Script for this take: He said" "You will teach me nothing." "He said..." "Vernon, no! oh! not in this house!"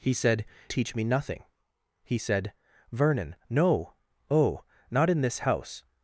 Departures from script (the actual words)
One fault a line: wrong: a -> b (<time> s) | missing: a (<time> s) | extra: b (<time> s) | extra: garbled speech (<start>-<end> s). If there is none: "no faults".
missing: You will (0.5 s)